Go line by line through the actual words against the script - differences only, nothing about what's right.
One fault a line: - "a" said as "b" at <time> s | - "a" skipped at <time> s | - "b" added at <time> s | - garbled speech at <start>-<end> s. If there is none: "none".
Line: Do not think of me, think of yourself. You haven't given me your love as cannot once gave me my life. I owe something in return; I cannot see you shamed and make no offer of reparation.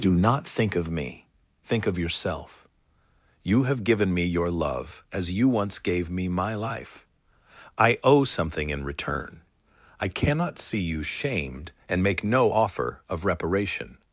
- "haven't" said as "have" at 3.6 s
- "cannot" said as "you" at 5.3 s